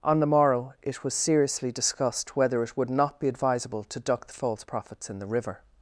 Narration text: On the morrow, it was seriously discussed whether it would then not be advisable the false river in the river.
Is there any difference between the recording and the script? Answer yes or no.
yes